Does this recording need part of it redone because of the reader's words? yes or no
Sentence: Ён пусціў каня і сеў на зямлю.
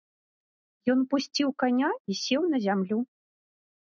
no